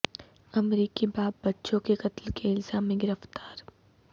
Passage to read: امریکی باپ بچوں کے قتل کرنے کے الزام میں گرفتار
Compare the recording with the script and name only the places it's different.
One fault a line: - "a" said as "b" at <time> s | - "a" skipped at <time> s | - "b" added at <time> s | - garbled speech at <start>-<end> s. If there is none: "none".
- "کرنے" skipped at 2.3 s